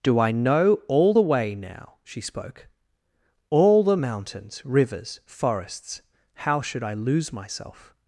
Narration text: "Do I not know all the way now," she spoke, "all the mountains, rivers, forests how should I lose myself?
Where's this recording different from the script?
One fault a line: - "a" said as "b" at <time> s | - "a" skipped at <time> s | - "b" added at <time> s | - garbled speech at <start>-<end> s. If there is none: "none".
- "not" skipped at 0.3 s